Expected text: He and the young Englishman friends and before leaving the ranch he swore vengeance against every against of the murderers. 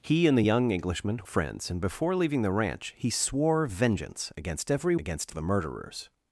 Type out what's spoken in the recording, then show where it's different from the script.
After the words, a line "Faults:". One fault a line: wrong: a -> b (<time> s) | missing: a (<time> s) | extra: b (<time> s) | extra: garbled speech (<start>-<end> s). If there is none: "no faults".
He and the young Englishman friends and before leaving the ranch he swore vengeance against every against of the murderers.
Faults:
no faults